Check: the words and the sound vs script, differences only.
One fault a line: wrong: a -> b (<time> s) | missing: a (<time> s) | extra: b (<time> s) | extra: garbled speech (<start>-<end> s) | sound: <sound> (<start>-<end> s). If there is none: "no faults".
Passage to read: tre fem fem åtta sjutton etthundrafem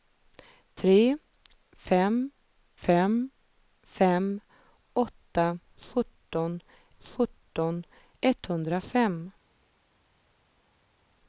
extra: fem (3.8 s)
extra: sjutton (7.0 s)